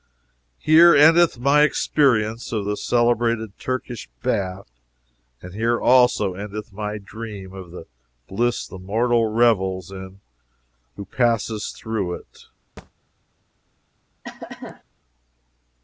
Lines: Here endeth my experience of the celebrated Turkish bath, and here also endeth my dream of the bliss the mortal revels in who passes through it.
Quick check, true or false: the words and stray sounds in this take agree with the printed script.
false